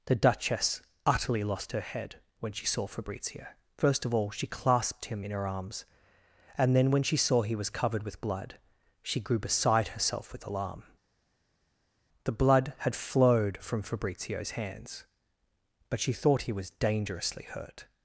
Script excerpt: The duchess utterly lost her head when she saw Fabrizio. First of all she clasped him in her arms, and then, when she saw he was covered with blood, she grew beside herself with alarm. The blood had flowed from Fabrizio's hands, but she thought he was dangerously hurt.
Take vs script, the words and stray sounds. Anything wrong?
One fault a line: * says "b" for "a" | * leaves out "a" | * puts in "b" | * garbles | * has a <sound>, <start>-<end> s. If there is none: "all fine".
all fine